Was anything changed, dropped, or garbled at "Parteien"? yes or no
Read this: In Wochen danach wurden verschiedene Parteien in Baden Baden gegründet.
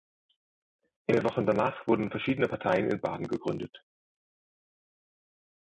no